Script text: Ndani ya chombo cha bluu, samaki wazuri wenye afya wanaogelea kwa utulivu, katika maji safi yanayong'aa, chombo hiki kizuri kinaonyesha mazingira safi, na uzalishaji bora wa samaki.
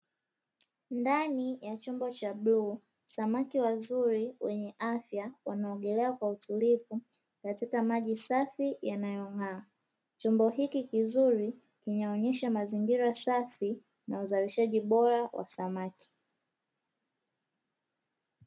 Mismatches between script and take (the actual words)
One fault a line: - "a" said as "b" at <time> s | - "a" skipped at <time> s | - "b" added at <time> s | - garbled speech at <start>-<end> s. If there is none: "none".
none